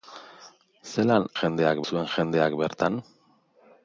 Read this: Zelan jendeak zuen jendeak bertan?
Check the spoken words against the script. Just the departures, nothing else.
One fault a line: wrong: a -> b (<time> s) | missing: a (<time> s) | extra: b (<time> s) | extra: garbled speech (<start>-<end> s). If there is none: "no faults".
no faults